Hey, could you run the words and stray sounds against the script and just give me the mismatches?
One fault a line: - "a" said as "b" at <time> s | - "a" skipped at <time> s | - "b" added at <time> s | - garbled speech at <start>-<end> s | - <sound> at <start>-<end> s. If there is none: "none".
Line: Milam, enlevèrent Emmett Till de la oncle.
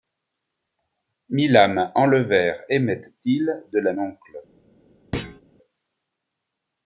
- thud at 5.1-5.4 s